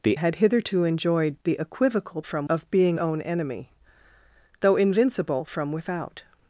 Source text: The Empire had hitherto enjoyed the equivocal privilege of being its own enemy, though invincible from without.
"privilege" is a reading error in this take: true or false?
true